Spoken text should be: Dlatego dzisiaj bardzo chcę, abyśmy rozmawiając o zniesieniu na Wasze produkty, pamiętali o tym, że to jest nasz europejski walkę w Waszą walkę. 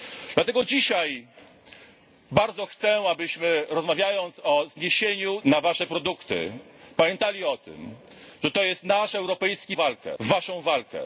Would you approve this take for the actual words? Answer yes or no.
yes